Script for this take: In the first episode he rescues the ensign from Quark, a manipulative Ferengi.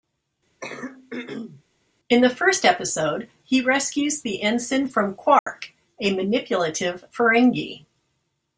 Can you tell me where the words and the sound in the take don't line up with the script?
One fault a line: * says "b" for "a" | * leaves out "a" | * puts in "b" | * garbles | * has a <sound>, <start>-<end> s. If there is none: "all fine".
* has a throat clearing, 0.6-1.6 s
* has a dropout, 5.4-5.5 s